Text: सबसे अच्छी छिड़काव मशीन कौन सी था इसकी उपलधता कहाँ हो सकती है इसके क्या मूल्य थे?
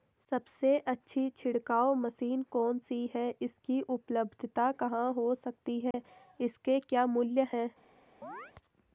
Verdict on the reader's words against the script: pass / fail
fail